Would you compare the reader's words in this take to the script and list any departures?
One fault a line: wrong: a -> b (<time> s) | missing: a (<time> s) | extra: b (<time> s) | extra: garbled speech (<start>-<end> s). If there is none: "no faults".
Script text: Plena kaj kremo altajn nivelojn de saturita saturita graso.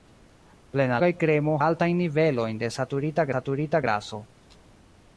no faults